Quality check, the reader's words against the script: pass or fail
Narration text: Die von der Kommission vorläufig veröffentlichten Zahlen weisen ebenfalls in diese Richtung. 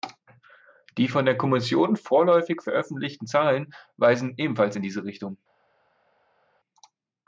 pass